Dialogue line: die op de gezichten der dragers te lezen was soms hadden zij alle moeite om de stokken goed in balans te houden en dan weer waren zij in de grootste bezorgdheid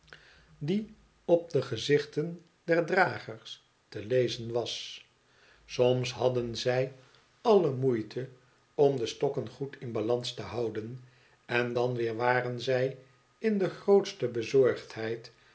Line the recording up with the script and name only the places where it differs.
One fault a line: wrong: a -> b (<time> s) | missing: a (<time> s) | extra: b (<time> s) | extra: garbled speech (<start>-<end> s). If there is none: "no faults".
no faults